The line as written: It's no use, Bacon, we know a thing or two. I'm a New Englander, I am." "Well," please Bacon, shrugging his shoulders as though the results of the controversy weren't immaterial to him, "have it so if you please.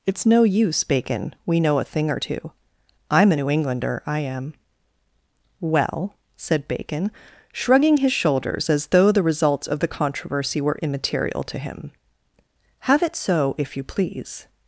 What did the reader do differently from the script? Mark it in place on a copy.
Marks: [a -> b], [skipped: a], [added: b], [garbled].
It's no use, Bacon, we know a thing or two. I'm a New Englander, I am." "Well," [please -> said] Bacon, shrugging his shoulders as though the results of the controversy [weren't -> were] immaterial to him, "have it so if you please.